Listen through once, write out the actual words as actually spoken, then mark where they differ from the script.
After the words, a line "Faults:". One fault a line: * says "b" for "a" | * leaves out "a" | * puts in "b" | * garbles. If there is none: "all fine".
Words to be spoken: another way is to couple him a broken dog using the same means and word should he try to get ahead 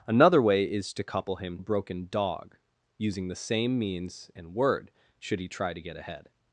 another way is to couple him a broken dog using the same means and word should he try to get ahead
Faults:
all fine